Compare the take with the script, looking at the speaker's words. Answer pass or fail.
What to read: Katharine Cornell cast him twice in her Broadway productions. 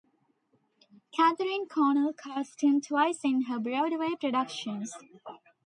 pass